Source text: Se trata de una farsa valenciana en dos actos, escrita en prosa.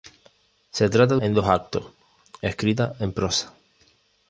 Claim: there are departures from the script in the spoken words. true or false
true